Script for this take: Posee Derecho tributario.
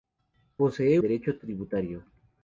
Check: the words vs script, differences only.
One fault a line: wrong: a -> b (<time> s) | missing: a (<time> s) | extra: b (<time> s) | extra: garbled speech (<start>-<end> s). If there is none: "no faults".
no faults